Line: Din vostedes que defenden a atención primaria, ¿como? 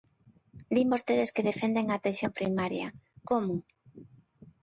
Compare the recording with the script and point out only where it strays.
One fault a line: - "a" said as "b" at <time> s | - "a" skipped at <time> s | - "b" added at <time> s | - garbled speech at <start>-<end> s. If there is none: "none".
none